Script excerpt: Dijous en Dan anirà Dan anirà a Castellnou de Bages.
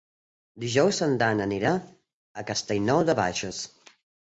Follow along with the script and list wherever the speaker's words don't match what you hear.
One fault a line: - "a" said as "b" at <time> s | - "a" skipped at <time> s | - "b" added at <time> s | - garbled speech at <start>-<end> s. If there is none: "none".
- "Dan anirà" skipped at 1.8 s